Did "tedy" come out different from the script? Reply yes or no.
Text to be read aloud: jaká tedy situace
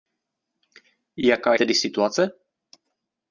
no